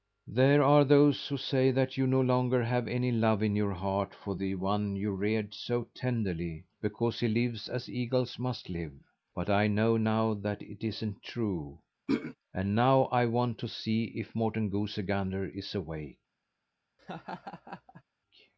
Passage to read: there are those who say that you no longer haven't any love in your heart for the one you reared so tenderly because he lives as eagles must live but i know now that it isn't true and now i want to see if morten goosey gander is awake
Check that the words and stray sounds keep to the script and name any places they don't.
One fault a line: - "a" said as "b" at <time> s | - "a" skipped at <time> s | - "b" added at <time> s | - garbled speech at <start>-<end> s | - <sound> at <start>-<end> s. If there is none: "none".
- "haven't" said as "have" at 2.6 s
- throat clearing at 12.1-12.4 s
- laugh at 17.0-18.0 s